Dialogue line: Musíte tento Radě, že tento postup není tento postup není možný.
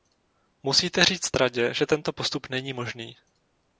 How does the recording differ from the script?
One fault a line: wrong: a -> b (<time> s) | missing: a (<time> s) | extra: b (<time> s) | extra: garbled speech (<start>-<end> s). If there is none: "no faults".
wrong: tento -> říct (1.1 s)
missing: tento postup není (2.7 s)